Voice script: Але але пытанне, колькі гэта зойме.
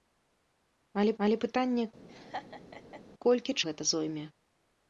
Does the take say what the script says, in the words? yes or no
yes